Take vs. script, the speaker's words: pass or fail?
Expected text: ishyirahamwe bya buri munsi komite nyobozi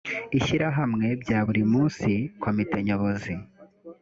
pass